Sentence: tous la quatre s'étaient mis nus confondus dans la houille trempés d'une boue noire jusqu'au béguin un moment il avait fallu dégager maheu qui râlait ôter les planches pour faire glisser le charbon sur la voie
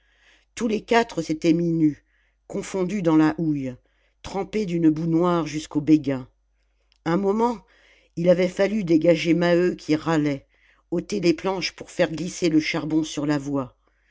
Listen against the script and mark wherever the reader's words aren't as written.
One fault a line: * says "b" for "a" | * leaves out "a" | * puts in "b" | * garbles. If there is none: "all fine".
* says "les" for "la"